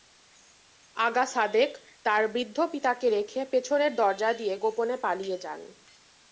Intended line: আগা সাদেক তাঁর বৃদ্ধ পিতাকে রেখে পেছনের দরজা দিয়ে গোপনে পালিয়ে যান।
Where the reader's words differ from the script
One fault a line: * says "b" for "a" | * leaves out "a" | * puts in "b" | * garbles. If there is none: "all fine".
all fine